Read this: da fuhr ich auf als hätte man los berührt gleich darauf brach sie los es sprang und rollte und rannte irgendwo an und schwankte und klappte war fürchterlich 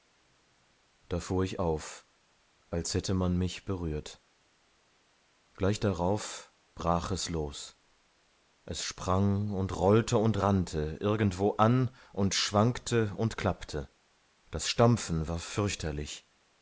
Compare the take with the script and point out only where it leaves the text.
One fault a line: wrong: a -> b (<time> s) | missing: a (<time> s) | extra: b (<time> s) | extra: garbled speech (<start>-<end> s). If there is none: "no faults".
wrong: los -> mich (3.4 s)
wrong: sie -> es (7.1 s)
extra: das stampfen (14.5 s)